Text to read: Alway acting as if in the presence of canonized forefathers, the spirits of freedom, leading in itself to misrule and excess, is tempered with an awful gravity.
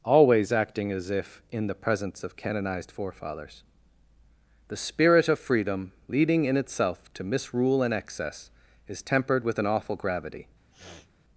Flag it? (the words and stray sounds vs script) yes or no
yes